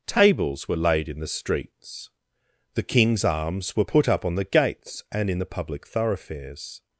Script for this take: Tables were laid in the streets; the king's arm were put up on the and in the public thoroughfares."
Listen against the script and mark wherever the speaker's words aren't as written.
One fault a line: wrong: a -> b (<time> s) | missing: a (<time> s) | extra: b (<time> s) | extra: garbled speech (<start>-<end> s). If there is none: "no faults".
wrong: arm -> arms (3.2 s)
extra: gates (4.4 s)